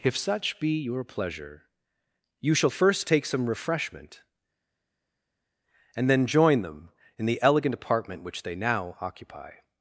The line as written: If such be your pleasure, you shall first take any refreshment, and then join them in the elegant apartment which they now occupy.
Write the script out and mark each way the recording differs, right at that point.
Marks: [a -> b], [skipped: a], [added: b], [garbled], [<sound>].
If such be your pleasure, you shall first take [any -> some] refreshment, and then join them in the elegant apartment which they now occupy.